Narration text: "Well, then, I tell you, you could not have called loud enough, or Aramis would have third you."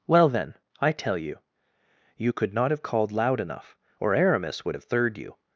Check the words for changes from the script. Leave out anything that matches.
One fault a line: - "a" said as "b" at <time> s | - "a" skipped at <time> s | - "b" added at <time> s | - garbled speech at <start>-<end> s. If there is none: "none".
none